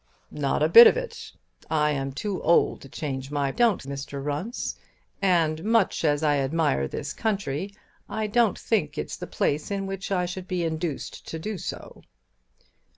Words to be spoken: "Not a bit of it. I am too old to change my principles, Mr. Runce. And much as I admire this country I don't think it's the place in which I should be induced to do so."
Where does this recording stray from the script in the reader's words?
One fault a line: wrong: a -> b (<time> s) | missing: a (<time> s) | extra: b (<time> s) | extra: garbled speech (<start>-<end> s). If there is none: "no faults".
wrong: principles -> don't (3.5 s)